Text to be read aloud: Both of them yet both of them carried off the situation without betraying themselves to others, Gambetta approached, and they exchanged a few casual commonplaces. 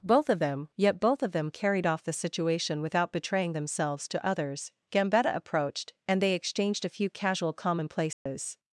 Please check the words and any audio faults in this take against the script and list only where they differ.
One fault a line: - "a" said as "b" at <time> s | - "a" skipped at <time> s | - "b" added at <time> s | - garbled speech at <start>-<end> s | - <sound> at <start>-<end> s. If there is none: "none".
- dropout at 8.1-8.3 s